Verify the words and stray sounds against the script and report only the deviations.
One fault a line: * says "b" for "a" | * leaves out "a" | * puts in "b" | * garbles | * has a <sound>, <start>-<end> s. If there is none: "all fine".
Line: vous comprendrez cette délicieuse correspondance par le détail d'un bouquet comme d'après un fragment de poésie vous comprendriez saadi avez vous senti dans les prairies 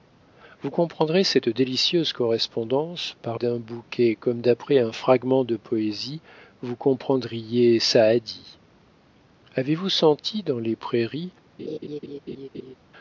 * leaves out "le détail"
* has a laugh, 11.6-12.8 s